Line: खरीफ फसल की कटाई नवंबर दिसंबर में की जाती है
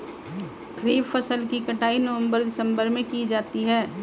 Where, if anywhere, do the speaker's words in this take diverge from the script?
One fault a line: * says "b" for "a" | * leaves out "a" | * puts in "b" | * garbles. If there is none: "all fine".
all fine